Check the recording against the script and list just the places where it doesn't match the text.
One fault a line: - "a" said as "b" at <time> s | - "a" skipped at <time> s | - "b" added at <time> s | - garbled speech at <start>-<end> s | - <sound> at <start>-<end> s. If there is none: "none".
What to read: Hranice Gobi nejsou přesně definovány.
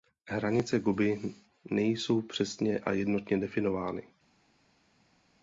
- "a jednotně" added at 2.8 s